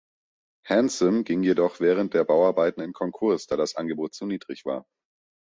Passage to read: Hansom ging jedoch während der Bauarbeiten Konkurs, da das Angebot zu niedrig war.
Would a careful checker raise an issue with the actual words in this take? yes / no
yes